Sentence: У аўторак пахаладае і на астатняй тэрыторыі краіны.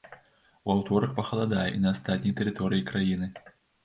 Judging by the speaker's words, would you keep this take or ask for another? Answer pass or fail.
pass